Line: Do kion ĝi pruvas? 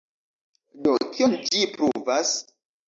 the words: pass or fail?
pass